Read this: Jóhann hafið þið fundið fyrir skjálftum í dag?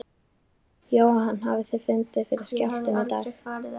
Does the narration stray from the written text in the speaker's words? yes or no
no